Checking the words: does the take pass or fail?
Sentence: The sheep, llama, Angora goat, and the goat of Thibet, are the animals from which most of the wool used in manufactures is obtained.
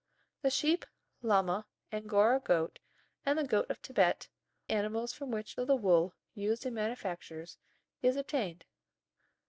fail